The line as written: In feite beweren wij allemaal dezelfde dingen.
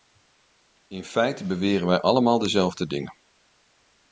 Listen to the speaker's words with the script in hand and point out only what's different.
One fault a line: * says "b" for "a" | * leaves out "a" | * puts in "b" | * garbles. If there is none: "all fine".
all fine